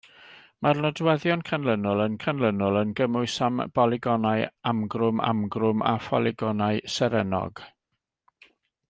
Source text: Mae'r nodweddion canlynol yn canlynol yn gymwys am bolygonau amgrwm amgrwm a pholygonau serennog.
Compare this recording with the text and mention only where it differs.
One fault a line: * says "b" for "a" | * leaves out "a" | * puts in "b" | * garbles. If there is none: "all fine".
all fine